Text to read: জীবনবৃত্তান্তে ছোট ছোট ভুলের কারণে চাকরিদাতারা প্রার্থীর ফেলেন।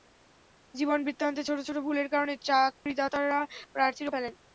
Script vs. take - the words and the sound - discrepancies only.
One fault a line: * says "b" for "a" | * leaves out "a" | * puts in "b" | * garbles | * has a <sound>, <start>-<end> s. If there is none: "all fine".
* has a dropout, 2.7-2.9 s